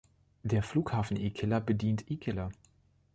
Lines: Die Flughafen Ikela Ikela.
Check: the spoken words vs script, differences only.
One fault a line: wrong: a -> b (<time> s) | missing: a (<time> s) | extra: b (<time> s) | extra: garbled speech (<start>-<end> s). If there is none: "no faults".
wrong: Die -> Der (0.4 s)
extra: bedient (1.6 s)